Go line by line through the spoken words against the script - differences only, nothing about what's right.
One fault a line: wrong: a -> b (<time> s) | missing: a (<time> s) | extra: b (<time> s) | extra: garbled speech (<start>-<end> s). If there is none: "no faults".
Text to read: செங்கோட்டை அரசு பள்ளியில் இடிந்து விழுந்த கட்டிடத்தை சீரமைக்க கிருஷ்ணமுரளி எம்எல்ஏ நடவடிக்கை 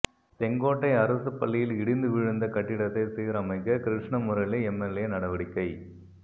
no faults